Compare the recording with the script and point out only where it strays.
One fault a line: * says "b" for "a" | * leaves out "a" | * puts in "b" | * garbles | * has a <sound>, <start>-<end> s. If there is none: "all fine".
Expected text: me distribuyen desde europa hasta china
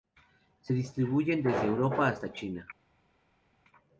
* says "se" for "me"